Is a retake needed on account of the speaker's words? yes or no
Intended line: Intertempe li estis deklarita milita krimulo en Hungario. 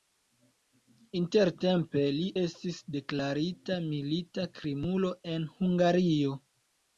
no